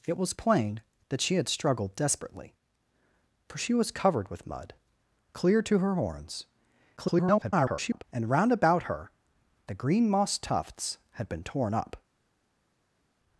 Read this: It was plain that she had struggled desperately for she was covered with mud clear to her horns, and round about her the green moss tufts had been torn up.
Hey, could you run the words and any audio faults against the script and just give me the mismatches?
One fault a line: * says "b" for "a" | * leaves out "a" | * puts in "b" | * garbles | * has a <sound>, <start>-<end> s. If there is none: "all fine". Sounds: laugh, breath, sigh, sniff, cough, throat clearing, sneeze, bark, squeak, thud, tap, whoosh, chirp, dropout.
* garbles